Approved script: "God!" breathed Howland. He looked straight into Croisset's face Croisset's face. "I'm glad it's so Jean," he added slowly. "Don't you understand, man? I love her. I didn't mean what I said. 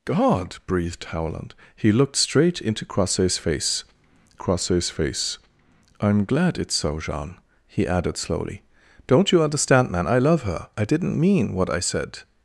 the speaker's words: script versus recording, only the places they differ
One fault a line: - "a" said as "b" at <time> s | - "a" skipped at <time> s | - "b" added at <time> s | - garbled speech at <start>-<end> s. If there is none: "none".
none